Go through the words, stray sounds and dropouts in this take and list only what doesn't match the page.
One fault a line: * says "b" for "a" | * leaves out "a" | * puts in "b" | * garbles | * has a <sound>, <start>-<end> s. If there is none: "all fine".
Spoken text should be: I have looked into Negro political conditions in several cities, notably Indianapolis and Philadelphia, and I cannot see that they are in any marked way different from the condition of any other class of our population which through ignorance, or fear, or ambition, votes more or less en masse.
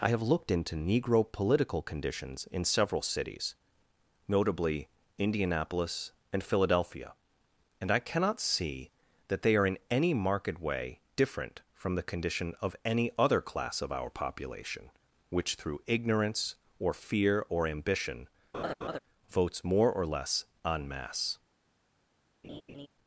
* has a laugh, 18.5-19.0 s
* has a laugh, 22.4-22.9 s